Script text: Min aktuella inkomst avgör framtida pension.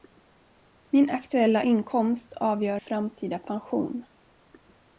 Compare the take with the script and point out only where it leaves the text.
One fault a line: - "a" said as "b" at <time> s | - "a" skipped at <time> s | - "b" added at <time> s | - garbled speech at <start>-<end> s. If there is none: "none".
none